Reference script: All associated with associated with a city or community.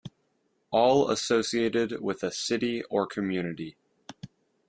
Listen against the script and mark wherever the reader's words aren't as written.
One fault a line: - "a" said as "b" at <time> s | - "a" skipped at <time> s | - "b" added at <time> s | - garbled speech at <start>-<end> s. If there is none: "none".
- "associated with" skipped at 2.2 s